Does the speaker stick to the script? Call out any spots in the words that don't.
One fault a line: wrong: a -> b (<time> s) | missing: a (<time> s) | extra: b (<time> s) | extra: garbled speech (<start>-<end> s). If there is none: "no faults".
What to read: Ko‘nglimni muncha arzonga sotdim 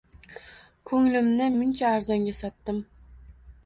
no faults